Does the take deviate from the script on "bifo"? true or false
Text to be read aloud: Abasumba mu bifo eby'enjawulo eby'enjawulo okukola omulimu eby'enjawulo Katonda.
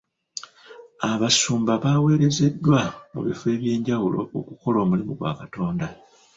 false